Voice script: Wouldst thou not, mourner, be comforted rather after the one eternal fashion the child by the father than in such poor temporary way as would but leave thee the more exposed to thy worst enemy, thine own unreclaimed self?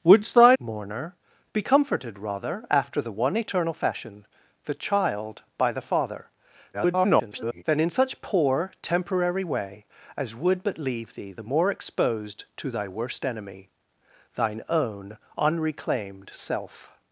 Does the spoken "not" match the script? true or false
false